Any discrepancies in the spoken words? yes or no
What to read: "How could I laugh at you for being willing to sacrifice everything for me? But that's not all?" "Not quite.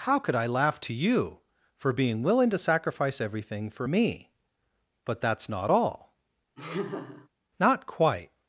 yes